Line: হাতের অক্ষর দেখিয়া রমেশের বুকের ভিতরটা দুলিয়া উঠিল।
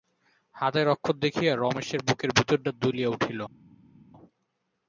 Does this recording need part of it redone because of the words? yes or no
no